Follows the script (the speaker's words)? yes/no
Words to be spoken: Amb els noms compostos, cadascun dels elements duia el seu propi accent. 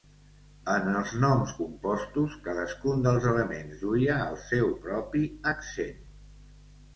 no